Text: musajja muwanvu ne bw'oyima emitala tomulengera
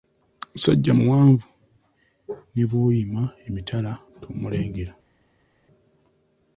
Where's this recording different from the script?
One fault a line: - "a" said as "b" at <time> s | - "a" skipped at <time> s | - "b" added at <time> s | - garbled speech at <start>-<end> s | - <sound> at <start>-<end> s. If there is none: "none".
none